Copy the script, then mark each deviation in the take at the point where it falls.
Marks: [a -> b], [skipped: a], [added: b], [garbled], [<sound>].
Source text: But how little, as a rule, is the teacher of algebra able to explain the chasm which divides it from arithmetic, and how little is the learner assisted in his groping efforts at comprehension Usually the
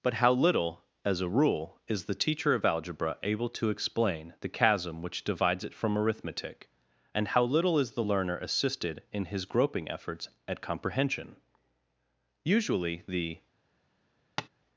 But how little, as a rule, is the teacher of algebra able to explain the chasm which divides it from arithmetic, and how little is the learner assisted in his groping efforts at comprehension Usually the [tap]